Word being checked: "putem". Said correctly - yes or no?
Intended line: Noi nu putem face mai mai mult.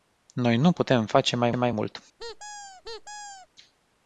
yes